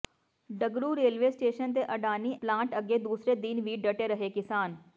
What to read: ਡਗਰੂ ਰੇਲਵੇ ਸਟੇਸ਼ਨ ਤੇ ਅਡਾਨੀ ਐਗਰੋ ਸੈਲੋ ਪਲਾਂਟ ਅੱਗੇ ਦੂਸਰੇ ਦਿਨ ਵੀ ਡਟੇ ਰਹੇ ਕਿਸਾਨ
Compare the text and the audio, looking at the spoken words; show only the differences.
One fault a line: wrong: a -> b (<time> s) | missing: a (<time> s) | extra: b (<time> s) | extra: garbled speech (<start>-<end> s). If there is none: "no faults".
missing: ਐਗਰੋ ਸੈਲੋ (2.4 s)